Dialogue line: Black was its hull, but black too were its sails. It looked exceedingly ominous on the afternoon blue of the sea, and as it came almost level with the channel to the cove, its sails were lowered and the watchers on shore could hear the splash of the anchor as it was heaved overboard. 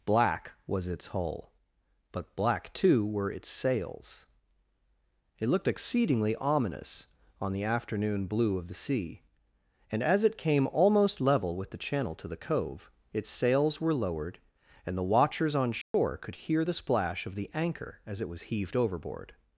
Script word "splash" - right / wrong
right